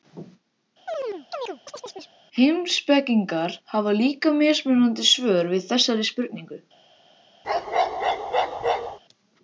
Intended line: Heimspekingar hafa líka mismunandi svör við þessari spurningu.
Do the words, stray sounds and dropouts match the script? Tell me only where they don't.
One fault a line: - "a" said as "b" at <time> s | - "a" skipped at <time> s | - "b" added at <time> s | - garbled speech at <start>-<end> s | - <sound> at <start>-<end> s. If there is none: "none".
- chirp at 0.9-2.2 s
- bark at 7.4-9.0 s